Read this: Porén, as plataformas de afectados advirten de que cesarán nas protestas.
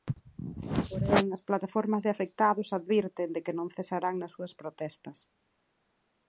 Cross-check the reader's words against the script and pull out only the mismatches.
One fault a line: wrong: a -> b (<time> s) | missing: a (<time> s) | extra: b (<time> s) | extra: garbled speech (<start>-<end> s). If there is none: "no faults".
extra: non (3.6 s)
extra: súas (4.3 s)